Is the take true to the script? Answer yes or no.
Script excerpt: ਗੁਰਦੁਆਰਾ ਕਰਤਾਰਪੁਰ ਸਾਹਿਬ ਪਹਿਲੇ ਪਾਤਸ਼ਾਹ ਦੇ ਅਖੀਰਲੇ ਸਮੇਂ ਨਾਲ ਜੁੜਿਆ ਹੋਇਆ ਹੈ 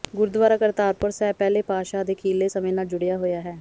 yes